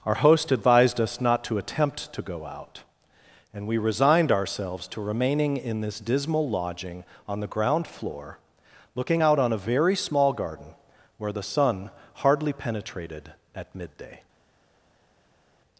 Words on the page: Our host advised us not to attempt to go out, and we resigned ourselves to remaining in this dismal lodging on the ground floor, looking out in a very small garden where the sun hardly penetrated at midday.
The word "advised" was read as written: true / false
true